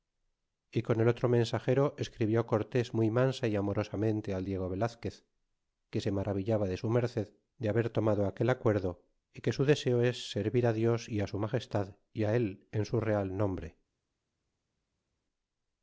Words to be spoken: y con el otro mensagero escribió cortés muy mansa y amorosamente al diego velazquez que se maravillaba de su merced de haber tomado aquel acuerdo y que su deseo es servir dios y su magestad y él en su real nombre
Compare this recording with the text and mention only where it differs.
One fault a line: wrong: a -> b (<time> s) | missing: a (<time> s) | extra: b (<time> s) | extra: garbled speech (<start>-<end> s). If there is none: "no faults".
no faults